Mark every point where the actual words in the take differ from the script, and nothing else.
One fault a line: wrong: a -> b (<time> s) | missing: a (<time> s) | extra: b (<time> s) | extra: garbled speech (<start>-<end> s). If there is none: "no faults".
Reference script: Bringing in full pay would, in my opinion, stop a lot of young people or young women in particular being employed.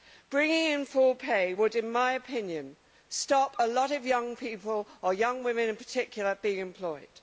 no faults